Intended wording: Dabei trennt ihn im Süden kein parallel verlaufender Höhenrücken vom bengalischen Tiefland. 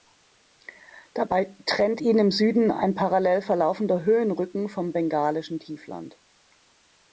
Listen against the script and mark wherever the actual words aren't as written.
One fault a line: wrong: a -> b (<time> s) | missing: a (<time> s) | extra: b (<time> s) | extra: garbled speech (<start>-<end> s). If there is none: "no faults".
wrong: kein -> ein (2.7 s)